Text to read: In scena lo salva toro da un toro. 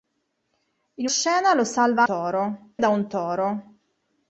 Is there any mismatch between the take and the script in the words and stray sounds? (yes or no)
no